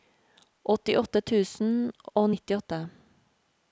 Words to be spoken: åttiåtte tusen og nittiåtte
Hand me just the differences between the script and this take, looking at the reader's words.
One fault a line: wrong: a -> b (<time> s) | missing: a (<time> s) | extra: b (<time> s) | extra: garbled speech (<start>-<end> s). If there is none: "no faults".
no faults